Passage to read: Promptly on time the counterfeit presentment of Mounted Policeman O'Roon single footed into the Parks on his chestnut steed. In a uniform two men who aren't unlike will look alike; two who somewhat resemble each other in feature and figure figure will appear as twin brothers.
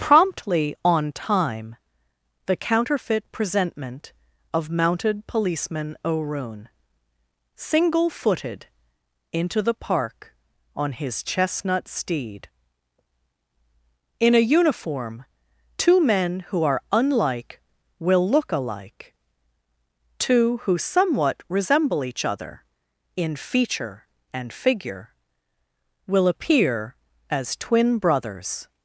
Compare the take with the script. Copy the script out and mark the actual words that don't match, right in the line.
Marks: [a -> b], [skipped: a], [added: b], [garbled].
Promptly on time the counterfeit presentment of Mounted Policeman O'Roon single footed into the [Parks -> Park] on his chestnut steed. In a uniform two men who [aren't -> are] unlike will look alike; two who somewhat resemble each other in feature and figure [skipped: figure] will appear as twin brothers.